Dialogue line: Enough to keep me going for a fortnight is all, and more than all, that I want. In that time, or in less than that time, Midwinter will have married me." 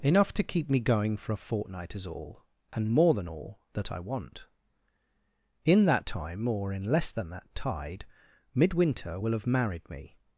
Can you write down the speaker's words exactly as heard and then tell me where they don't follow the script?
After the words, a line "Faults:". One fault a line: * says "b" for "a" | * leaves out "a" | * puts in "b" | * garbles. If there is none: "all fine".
Enough to keep me going for a fortnight is all, and more than all, that I want. In that time, or in less than that tide, Midwinter will have married me."
Faults:
* says "tide" for "time"